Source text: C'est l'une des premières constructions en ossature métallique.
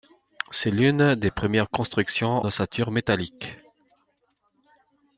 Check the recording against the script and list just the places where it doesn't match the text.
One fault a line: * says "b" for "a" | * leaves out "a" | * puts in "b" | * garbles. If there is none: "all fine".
* leaves out "en"